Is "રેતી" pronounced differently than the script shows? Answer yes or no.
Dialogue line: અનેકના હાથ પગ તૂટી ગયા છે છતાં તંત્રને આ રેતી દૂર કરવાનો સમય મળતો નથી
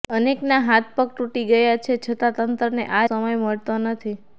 yes